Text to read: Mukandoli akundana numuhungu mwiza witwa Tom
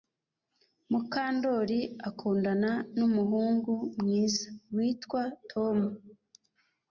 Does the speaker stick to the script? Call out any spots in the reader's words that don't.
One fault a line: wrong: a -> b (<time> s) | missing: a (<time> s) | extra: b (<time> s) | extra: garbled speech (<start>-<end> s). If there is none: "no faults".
no faults